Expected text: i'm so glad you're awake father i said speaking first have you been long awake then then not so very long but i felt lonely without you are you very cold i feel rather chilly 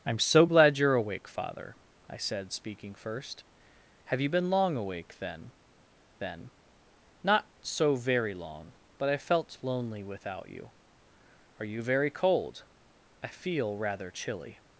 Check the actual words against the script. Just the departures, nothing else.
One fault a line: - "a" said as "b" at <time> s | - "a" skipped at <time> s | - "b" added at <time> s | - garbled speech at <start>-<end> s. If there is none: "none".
none